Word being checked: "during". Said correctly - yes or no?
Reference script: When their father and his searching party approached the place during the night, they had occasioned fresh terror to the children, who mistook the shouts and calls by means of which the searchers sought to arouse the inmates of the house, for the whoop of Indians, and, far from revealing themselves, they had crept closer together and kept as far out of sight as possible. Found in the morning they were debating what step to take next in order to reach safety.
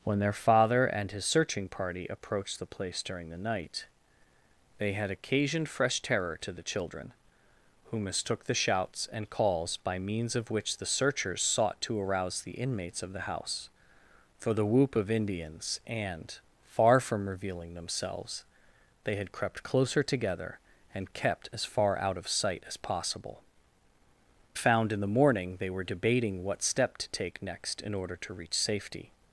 yes